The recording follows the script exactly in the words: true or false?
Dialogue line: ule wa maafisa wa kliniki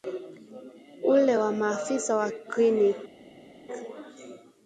true